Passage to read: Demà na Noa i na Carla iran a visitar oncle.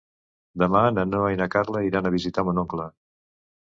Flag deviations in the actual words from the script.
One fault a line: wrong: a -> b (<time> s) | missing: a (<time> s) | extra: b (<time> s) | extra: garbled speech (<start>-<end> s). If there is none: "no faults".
extra: mon (2.5 s)